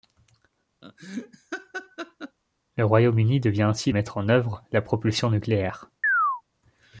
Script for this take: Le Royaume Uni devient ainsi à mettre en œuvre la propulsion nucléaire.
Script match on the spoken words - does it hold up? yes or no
yes